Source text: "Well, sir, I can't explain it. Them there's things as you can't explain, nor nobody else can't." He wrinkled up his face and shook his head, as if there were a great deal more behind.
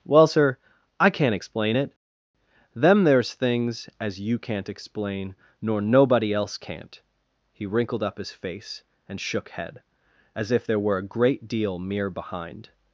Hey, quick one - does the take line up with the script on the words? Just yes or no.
no